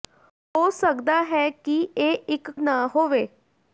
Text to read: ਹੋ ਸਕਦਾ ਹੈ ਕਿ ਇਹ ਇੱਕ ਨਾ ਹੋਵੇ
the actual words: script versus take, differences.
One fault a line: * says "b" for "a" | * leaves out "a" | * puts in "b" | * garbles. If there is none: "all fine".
all fine